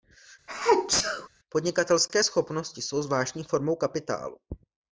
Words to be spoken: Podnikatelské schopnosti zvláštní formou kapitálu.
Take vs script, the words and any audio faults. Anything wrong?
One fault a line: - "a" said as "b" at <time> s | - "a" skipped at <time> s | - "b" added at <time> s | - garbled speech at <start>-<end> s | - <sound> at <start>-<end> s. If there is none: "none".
- sneeze at 0.5-1.3 s
- "jsou" added at 2.8 s